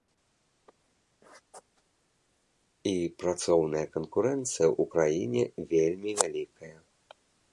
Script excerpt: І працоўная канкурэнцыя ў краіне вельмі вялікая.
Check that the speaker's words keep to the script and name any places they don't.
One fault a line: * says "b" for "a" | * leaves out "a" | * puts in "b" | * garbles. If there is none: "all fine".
all fine